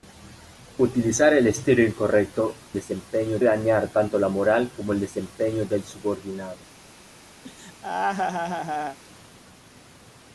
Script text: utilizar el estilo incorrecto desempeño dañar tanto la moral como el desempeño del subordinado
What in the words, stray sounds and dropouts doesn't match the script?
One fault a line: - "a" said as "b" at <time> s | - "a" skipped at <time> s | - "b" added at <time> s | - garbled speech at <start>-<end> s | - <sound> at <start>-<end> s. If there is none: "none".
- laugh at 7.4-9.0 s